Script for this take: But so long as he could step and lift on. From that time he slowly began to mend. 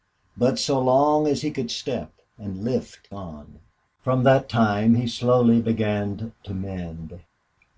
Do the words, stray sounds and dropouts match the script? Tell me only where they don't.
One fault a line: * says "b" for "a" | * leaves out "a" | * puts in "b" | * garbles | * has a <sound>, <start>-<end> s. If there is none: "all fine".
all fine